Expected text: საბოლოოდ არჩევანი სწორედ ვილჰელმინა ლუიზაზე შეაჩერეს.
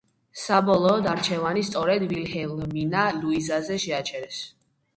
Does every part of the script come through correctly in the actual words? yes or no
yes